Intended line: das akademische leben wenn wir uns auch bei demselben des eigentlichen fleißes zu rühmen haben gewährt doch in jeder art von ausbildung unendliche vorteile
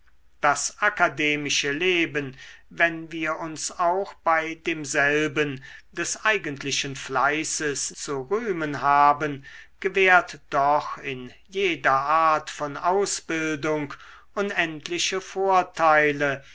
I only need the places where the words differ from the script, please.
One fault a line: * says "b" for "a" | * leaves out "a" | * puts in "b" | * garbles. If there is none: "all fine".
all fine